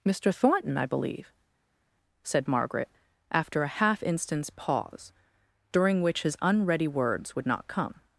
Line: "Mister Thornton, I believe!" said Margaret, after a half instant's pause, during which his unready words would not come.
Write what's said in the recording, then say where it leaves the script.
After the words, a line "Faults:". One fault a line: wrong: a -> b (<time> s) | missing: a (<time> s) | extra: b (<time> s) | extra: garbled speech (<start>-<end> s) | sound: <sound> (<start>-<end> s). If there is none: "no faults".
"Mister Thornton, I believe!" said Margaret, after a half instant's pause, during which his unready words would not come.
Faults:
no faults